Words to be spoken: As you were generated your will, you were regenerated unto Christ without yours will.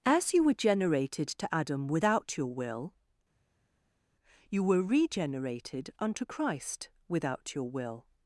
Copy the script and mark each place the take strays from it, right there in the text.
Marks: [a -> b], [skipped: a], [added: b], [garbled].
As you were generated [added: to Adam without] your will, you were regenerated unto Christ without [yours -> your] will.